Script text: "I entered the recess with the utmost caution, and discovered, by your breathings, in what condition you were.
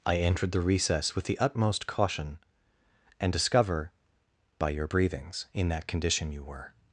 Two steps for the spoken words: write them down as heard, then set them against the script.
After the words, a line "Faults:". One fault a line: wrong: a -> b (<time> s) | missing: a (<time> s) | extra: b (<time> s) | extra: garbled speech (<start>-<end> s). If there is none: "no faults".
"I entered the recess with the utmost caution, and discover, by your breathings, in that condition you were.
Faults:
wrong: discovered -> discover (3.3 s)
wrong: what -> that (5.7 s)